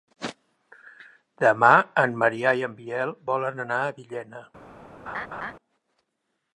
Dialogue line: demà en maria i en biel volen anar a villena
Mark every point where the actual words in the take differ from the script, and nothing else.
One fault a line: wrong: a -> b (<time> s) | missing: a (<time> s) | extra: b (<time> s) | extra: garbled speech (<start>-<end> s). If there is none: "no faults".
no faults